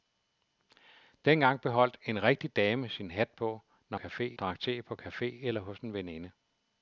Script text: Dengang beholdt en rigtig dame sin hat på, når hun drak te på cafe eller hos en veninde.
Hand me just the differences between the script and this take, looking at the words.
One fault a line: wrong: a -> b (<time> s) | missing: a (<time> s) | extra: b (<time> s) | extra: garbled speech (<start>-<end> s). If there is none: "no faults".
wrong: hun -> cafe (3.9 s)